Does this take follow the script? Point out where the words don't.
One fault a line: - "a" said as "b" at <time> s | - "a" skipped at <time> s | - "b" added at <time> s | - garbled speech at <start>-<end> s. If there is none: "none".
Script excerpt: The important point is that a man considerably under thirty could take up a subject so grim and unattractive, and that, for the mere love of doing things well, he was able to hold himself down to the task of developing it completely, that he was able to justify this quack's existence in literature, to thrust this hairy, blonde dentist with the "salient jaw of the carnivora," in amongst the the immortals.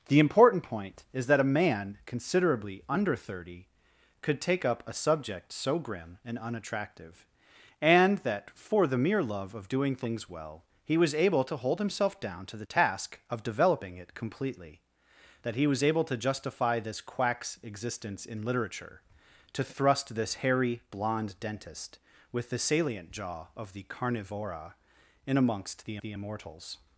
none